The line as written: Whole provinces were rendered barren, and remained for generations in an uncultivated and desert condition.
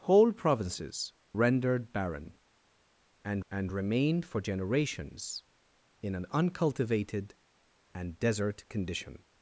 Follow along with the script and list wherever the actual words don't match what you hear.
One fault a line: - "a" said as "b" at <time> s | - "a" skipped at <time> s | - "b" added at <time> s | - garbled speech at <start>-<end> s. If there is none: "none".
- "were" skipped at 1.1 s
- "and" added at 3.5 s